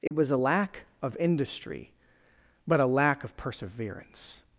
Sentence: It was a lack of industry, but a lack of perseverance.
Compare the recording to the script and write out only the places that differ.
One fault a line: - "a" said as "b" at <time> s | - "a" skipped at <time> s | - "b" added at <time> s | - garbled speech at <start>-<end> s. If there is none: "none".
none